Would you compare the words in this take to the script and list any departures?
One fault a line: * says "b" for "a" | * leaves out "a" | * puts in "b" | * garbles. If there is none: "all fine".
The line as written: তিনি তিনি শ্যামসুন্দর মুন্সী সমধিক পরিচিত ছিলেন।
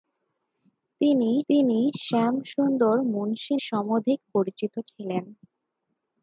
all fine